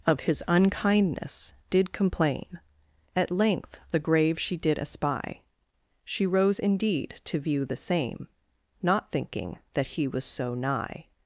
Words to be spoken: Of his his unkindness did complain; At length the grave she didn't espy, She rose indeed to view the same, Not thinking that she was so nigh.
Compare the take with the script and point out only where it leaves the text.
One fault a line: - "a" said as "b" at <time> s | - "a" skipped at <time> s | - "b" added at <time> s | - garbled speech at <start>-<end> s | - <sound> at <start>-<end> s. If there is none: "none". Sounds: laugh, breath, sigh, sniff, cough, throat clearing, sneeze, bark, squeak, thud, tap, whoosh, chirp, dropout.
- "his" skipped at 0.4 s
- "didn't" said as "did" at 4.6 s
- "she" said as "he" at 9.9 s